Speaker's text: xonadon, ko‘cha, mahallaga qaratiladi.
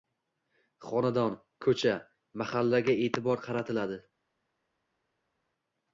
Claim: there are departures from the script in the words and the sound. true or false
true